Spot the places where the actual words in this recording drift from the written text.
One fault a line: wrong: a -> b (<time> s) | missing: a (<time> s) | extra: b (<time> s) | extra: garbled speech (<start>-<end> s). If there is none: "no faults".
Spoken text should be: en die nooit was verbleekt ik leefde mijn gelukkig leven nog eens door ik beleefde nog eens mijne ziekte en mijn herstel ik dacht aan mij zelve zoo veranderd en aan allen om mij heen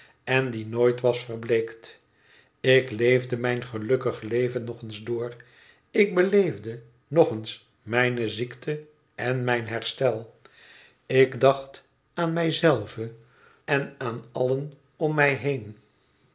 missing: zoo veranderd (13.1 s)